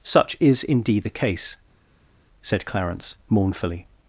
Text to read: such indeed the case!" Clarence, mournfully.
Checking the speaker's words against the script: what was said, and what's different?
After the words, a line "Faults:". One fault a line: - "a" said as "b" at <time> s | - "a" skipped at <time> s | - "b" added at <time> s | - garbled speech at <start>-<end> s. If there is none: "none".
such is indeed the case!" said Clarence, mournfully.
Faults:
- "is" added at 0.4 s
- "said" added at 2.4 s